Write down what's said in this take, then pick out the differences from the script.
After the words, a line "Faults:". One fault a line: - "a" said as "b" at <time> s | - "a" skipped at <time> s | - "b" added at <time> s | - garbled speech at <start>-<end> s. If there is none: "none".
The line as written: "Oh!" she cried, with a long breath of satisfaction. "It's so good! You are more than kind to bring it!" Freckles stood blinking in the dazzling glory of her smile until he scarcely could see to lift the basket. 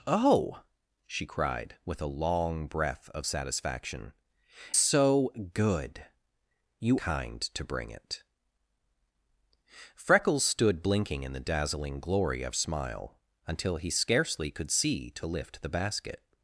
"Oh!" she cried, with a long breath of satisfaction. "So good! You kind to bring it!" Freckles stood blinking in the dazzling glory of smile until he scarcely could see to lift the basket.
Faults:
- "It's" skipped at 4.1 s
- "are more than" skipped at 7.0 s
- "her" skipped at 12.6 s